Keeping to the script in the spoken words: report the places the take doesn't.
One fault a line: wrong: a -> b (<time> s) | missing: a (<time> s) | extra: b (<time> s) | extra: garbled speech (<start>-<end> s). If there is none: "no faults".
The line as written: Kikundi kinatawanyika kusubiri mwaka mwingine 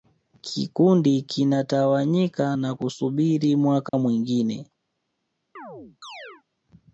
extra: na (2.6 s)